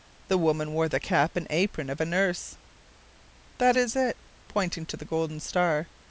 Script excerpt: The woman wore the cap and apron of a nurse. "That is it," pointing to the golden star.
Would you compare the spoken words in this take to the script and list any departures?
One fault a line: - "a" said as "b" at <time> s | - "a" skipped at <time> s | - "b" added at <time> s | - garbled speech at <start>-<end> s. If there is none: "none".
none